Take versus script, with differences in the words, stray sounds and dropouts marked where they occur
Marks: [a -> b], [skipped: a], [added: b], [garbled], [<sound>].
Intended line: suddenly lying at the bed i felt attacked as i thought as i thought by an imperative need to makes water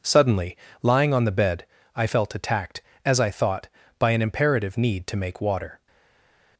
suddenly lying [at -> on] the bed i felt attacked as i thought [skipped: as i thought] by an imperative need to [makes -> make] water